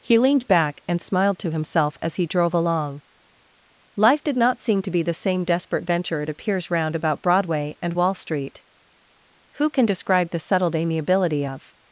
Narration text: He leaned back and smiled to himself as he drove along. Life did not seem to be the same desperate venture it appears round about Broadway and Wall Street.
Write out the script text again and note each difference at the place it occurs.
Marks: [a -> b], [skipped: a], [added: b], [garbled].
He leaned back and smiled to himself as he drove along. Life did not seem to be the same desperate venture it appears round about Broadway and Wall Street. [added: Who can describe the settled amiability of]